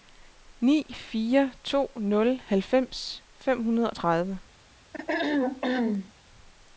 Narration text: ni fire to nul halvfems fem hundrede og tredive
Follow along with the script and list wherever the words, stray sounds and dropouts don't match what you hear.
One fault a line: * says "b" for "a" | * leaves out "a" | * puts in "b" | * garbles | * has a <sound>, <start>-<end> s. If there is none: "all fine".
* has a throat clearing, 4.9-6.1 s